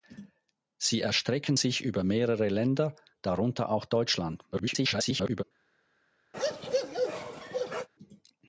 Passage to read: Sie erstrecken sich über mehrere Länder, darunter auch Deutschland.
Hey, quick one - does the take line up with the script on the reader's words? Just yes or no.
no